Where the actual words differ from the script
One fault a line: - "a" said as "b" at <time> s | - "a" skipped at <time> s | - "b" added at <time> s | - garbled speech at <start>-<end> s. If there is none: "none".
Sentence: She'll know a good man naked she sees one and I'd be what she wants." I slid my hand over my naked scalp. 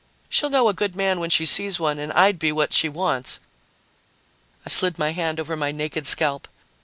- "naked" said as "when" at 1.2 s